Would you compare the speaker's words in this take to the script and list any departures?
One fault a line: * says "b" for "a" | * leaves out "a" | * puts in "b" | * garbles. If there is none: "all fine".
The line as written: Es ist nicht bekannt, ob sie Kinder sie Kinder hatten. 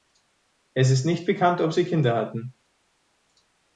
* leaves out "sie Kinder"